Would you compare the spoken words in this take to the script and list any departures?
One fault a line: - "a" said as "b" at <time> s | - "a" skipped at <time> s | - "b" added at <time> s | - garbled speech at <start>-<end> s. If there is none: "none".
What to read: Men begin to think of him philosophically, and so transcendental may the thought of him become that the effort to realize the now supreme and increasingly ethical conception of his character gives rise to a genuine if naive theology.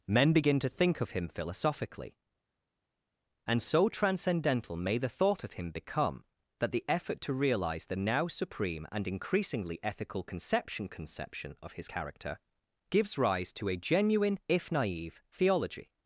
- "conception" added at 10.9 s